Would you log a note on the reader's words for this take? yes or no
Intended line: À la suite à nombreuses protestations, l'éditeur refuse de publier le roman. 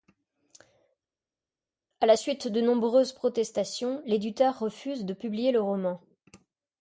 yes